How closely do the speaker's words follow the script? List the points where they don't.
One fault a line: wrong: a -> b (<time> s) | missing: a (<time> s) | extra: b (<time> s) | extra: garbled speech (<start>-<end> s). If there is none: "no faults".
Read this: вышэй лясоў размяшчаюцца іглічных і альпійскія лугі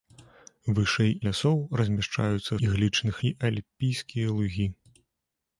no faults